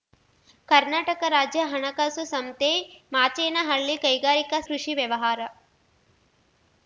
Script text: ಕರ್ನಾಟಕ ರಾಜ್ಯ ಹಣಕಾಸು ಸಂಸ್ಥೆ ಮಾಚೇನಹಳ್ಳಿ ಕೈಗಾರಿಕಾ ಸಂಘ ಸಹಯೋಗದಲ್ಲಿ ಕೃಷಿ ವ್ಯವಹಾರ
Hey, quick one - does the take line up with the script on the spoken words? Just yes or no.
no